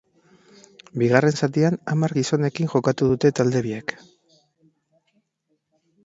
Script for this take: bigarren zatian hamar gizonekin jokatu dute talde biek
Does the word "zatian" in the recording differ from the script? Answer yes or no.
no